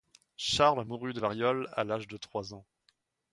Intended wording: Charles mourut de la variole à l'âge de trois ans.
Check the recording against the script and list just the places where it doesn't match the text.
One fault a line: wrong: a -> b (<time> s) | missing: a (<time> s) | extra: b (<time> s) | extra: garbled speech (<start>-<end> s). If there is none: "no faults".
missing: la (1.2 s)